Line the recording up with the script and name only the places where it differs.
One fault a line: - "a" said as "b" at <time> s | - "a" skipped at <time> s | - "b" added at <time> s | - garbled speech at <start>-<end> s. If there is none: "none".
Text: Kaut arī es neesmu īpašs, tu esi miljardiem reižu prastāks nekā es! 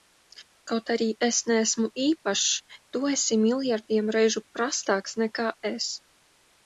none